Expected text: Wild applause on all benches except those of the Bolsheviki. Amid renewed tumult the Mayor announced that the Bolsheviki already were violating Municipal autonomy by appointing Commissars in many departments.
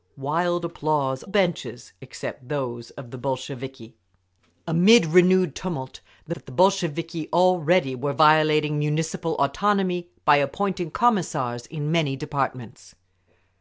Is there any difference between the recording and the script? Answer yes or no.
yes